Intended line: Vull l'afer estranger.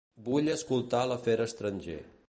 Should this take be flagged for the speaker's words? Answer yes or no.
yes